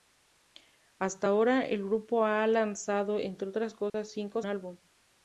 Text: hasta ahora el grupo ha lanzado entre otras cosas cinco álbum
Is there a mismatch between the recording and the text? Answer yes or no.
no